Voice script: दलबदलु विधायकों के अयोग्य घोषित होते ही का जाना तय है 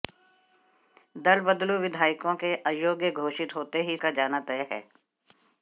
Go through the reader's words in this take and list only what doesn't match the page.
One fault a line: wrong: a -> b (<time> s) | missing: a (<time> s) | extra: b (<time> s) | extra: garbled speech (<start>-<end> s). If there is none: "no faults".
no faults